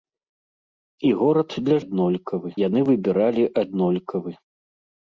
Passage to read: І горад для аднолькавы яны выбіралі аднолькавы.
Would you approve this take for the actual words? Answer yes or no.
yes